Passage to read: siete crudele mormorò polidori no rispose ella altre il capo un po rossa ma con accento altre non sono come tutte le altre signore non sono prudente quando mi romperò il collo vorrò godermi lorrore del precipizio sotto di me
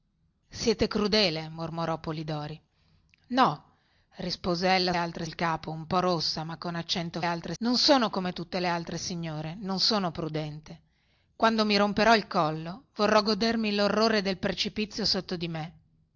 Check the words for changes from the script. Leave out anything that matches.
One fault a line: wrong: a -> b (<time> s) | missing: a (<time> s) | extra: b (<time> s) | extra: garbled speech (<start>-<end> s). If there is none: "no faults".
no faults